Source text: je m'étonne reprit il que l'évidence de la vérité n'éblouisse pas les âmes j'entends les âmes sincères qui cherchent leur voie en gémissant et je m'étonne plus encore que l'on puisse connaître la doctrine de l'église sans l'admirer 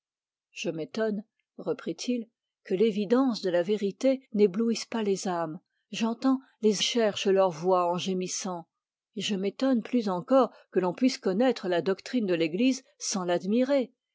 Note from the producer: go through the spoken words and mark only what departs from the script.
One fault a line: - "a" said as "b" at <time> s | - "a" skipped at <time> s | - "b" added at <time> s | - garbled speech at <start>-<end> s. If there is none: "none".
- "âmes sincères qui" skipped at 6.8 s